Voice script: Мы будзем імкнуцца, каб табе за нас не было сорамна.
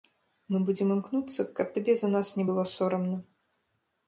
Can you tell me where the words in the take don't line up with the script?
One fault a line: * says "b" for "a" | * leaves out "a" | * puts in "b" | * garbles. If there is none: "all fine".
all fine